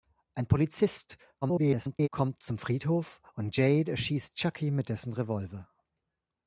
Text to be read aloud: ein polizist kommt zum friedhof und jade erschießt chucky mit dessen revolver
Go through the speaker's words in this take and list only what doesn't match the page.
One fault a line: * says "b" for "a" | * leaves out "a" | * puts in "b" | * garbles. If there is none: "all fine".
* garbles